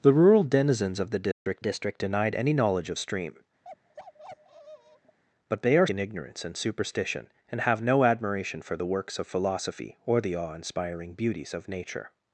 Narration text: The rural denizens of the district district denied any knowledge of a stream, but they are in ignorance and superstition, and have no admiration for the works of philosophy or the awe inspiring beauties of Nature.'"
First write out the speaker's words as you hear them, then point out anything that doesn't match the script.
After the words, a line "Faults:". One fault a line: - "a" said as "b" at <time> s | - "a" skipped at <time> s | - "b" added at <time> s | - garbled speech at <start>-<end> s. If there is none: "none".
The rural denizens of the district district denied any knowledge of a stream, but they are in ignorance and superstition, and have no admiration for the works of philosophy or the awe inspiring beauties of Nature.'"
Faults:
none